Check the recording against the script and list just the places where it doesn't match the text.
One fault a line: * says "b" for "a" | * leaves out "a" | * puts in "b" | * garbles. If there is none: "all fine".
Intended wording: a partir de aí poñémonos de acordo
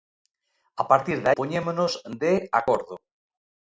* leaves out "aí"